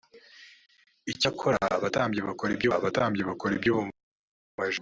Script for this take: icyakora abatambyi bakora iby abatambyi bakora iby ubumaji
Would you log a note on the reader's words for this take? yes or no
no